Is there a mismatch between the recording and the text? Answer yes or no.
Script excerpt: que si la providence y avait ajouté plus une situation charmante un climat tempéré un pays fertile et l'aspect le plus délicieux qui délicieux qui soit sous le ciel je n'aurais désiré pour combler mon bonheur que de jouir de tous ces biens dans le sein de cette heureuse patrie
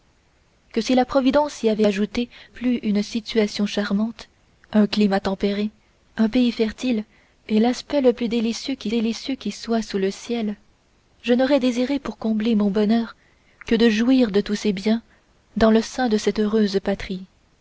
no